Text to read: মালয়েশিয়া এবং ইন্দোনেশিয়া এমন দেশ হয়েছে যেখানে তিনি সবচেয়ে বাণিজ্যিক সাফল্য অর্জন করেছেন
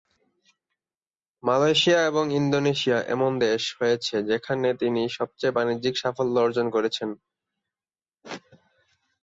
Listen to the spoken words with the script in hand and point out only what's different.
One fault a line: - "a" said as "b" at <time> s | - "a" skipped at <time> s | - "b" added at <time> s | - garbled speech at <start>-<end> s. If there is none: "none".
none